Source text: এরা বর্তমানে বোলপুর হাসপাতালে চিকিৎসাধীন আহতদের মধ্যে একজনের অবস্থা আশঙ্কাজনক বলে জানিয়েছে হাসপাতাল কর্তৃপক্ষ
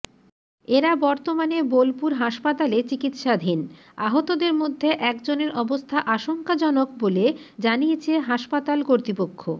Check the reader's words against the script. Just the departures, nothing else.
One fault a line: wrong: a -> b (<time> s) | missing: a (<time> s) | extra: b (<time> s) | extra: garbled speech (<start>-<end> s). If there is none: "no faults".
no faults